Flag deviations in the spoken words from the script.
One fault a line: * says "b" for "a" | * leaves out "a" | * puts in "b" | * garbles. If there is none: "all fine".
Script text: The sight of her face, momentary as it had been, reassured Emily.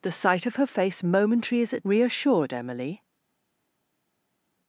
* leaves out "had been"